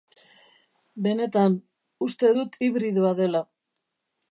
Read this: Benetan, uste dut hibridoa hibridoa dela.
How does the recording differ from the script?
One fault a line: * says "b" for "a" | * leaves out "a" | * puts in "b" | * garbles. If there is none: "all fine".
* leaves out "hibridoa"